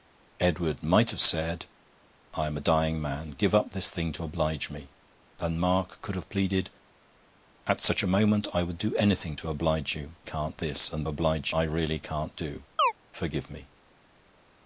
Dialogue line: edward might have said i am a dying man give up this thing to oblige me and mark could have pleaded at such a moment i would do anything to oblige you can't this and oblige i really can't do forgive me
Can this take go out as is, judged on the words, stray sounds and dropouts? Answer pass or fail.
fail